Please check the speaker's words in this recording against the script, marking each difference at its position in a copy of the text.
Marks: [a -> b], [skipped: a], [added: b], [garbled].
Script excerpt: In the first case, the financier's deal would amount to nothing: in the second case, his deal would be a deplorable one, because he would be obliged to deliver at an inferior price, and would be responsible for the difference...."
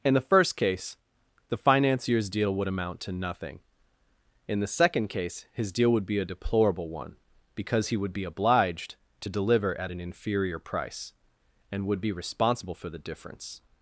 In the first case, the financier's deal would amount to nothing: in the second case, his deal would be a deplorable one, because he would be obliged to deliver at an inferior price, and would be responsible for the difference...."